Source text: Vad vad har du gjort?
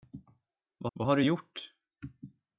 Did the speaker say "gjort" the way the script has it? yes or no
yes